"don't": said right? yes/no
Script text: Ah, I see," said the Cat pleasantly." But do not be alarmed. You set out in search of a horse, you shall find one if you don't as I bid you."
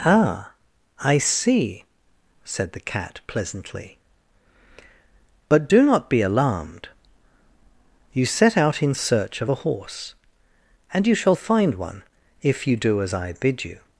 no